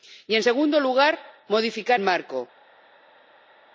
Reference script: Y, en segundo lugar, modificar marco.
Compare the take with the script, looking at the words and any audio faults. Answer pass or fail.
pass